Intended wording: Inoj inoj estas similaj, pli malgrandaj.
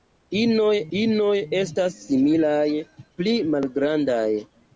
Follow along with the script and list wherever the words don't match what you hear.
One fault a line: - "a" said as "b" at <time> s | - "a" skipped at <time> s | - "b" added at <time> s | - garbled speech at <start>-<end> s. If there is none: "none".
none